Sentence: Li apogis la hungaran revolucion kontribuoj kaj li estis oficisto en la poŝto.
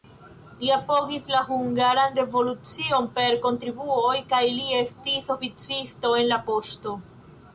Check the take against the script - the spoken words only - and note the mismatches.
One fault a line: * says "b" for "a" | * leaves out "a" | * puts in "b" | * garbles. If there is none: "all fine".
* puts in "per"